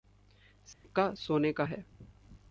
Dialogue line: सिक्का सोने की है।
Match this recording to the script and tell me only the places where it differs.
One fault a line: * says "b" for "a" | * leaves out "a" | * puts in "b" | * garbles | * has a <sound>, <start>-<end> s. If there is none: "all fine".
* has a dropout, 0.7-0.8 s
* says "का" for "की"